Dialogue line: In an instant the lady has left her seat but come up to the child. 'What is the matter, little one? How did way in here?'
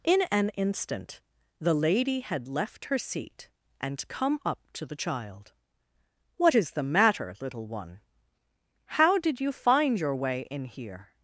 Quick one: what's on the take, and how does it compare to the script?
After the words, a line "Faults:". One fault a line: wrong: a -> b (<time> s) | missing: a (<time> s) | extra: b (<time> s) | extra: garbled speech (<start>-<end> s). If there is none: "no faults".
In an instant the lady had left her seat and come up to the child. 'What is the matter, little one? How did you find your way in here?'
Faults:
wrong: has -> had (2.2 s)
wrong: but -> and (3.8 s)
extra: you find your (9.4 s)